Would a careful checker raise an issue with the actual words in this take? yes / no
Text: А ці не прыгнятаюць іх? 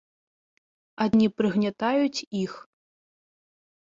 yes